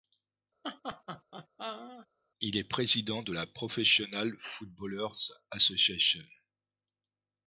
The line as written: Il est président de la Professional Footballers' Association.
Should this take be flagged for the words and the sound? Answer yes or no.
yes